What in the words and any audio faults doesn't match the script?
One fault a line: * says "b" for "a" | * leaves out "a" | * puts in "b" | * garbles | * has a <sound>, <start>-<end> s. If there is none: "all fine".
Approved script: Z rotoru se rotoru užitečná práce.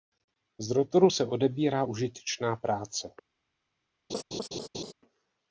* says "odebírá" for "rotoru"
* has a laugh, 4.1-4.9 s